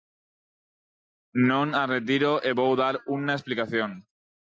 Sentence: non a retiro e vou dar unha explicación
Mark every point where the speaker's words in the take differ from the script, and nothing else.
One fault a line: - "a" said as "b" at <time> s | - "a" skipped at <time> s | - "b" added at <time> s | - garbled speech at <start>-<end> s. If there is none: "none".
none